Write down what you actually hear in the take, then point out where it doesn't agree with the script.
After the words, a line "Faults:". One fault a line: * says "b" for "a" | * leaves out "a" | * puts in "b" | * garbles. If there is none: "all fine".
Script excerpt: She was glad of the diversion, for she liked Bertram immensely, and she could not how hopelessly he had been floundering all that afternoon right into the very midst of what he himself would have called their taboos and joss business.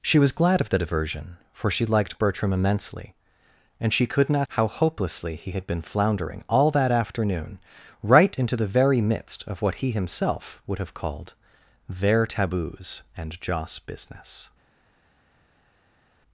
She was glad of the diversion, for she liked Bertram immensely, and she could not how hopelessly he had been floundering all that afternoon right into the very midst of what he himself would have called their taboos and joss business.
Faults:
all fine